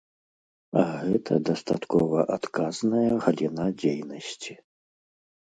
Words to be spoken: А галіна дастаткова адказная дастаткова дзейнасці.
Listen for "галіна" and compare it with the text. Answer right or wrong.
wrong